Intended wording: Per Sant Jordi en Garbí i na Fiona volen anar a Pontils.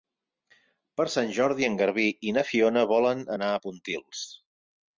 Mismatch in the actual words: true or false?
false